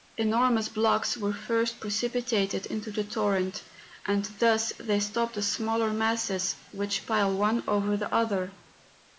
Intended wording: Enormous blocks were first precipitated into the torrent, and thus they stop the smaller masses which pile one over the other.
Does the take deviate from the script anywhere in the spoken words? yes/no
no